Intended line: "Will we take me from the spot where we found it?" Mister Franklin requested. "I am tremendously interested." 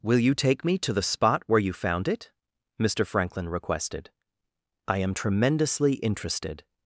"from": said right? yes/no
no